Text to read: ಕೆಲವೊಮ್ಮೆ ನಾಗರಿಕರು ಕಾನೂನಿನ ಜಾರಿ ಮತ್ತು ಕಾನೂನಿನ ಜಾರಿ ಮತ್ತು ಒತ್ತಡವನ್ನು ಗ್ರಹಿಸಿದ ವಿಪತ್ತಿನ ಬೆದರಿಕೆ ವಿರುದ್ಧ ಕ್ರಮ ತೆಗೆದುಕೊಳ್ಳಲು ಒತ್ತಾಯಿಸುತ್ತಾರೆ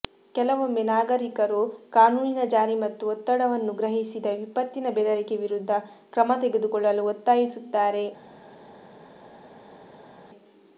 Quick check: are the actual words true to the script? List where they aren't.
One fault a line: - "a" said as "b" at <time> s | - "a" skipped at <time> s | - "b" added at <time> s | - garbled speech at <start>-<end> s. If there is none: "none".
- "ಕಾನೂನಿನ ಜಾರಿ ಮತ್ತು" skipped at 3.0 s